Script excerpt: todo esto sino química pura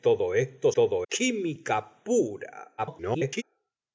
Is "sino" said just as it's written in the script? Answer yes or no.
no